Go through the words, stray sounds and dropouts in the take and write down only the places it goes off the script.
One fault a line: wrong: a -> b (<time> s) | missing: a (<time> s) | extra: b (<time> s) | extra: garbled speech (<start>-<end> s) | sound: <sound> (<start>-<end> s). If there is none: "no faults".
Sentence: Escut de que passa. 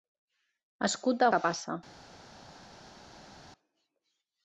no faults